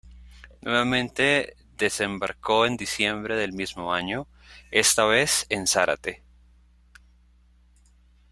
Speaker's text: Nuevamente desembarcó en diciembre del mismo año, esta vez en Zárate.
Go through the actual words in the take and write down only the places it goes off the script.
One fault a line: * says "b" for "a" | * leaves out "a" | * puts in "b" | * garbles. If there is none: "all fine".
all fine